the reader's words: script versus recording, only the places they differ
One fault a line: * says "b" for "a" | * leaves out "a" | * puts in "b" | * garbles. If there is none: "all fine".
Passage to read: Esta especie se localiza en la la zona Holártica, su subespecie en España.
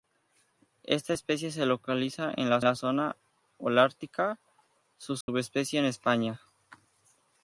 all fine